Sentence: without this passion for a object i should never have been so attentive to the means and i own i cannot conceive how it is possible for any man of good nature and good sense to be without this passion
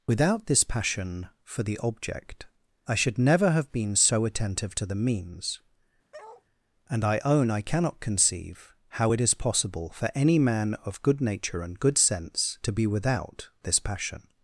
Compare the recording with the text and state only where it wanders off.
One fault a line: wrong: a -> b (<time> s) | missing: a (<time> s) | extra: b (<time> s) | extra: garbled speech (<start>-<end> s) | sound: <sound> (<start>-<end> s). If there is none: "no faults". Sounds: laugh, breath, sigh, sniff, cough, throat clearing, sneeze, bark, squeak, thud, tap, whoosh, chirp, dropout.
wrong: a -> the (1.6 s)
sound: bark (6.1-6.4 s)